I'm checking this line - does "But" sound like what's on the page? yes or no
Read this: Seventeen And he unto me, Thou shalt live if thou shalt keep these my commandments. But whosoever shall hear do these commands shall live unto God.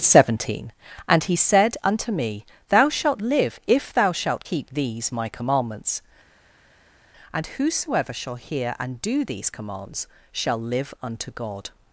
no